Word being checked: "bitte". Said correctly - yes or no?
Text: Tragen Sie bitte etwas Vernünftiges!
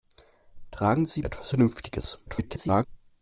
no